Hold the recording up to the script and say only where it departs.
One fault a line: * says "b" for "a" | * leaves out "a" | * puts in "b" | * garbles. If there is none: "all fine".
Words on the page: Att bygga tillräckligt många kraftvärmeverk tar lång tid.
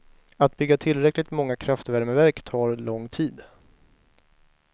all fine